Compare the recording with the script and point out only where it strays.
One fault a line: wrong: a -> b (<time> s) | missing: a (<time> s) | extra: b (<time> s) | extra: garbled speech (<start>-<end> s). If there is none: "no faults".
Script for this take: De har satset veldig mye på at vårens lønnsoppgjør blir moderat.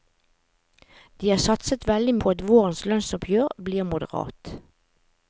missing: mye (2.1 s)